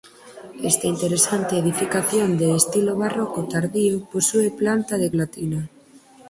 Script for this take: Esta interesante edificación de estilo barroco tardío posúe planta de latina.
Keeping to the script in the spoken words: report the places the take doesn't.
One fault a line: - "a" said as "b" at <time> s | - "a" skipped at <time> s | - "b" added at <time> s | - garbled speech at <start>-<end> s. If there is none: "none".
none